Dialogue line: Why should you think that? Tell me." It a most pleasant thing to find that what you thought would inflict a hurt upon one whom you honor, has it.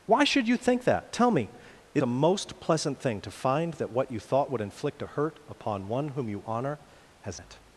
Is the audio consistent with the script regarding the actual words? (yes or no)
yes